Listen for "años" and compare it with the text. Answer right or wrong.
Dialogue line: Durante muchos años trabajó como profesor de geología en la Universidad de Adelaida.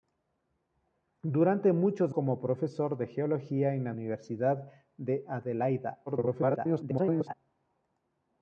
wrong